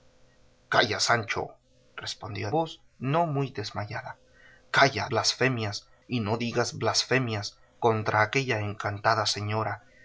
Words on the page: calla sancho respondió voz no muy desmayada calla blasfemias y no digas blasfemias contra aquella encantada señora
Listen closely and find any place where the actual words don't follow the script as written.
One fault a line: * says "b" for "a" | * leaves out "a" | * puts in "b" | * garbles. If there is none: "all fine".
all fine